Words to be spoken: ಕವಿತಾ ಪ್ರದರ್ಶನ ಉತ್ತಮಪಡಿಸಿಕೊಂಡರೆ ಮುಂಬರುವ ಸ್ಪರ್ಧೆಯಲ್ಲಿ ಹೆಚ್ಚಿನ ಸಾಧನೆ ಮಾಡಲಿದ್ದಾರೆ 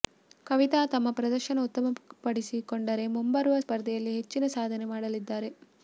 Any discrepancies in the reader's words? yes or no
yes